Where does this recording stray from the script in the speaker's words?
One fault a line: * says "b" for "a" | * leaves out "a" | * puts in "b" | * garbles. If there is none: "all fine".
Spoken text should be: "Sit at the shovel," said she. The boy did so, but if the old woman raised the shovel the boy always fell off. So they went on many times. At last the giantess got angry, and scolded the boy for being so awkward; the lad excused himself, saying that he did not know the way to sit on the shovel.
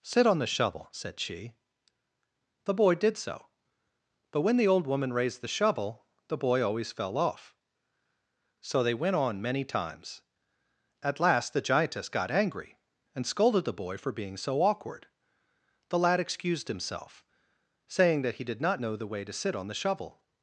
* says "on" for "at"
* says "when" for "if"